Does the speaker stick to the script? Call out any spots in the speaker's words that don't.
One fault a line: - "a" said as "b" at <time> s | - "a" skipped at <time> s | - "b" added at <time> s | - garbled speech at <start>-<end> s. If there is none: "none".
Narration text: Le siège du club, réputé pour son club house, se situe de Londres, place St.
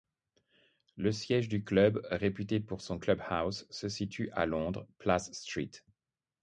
- "de" said as "à" at 4.3 s